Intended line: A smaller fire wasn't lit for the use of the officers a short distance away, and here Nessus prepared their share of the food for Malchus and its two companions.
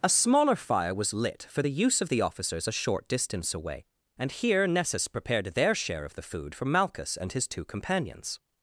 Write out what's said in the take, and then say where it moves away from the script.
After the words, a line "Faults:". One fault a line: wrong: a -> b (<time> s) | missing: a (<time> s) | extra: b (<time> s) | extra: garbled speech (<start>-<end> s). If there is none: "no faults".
A smaller fire was lit for the use of the officers a short distance away, and here Nessus prepared their share of the food for Malchus and his two companions.
Faults:
wrong: wasn't -> was (0.9 s)
wrong: its -> his (7.3 s)